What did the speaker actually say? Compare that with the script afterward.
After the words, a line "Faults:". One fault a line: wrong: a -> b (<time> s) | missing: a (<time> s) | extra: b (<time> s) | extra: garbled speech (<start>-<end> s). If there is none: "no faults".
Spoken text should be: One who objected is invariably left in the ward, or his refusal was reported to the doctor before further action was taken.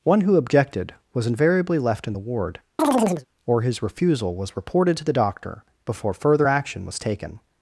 One who objected was invariably left in the ward, or his refusal was reported to the doctor before further action was taken.
Faults:
wrong: is -> was (1.1 s)